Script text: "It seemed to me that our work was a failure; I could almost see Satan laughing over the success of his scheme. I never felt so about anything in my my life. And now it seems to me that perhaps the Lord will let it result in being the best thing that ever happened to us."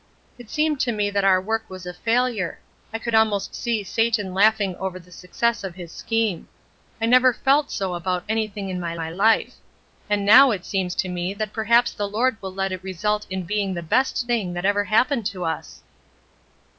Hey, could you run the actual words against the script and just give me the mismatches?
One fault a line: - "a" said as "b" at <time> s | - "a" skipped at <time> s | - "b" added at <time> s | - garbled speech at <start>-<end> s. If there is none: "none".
none